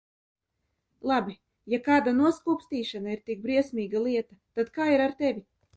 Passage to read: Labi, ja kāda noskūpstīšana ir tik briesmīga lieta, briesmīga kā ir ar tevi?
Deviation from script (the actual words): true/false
true